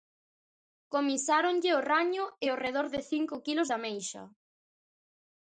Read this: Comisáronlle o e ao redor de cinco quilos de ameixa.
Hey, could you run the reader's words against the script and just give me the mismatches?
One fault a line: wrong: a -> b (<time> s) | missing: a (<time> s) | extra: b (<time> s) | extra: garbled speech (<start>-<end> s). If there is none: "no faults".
extra: raño (1.9 s)